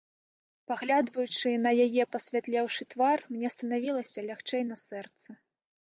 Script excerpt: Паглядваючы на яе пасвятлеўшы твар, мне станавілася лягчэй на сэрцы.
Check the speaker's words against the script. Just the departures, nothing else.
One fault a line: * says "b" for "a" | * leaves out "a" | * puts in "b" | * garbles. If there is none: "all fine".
all fine